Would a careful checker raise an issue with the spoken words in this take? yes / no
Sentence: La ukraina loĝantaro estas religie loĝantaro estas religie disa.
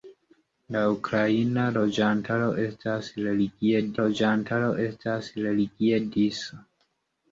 no